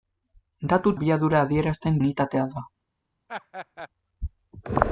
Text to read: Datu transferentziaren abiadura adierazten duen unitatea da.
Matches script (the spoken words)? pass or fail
fail